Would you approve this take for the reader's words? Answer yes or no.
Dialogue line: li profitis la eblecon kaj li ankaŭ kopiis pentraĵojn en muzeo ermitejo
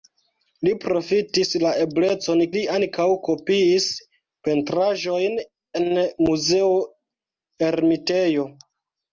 no